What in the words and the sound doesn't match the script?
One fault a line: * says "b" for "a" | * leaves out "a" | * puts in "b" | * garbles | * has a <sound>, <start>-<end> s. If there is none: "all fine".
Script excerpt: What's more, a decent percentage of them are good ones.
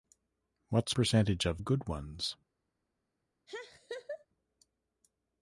* leaves out "more a decent"
* leaves out "them are"
* has a laugh, 3.5-4.3 s